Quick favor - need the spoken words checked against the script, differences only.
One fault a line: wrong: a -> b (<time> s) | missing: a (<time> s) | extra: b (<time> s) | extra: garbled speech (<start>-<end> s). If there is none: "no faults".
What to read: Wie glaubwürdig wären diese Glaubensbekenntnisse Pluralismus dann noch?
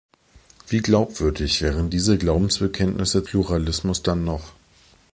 no faults